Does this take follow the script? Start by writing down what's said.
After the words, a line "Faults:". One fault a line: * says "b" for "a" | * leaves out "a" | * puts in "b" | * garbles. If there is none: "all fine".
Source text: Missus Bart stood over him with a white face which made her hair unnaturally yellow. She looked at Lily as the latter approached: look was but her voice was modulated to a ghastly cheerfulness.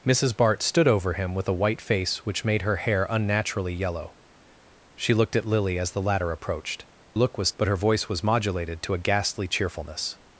Missus Bart stood over him with a white face which made her hair unnaturally yellow. She looked at Lily as the latter approached: look was but her voice was modulated to a ghastly cheerfulness.
Faults:
all fine